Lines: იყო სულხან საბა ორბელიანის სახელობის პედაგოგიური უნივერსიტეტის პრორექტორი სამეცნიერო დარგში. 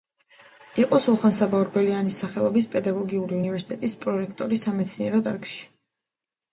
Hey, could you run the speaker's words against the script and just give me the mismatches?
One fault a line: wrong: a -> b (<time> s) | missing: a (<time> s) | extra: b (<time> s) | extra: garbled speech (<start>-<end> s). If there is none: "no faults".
no faults